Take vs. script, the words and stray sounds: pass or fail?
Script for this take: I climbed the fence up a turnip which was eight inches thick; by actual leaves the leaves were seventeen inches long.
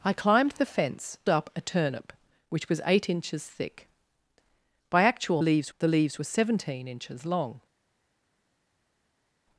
pass